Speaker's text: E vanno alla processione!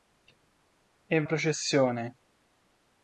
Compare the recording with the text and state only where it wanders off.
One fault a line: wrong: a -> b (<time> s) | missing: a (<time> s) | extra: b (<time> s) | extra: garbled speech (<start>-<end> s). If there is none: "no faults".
missing: vanno alla (1.2 s)